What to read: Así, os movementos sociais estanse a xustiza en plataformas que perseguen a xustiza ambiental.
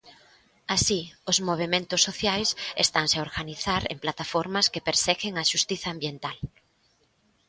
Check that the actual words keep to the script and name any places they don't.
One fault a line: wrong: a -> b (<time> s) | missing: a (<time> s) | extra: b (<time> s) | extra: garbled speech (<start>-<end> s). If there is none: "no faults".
wrong: xustiza -> organizar (3.3 s)